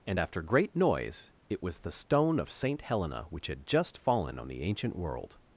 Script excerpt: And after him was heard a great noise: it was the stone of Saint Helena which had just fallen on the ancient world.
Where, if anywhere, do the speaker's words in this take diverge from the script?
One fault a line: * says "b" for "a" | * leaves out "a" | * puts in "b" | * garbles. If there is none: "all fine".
* leaves out "him was heard a"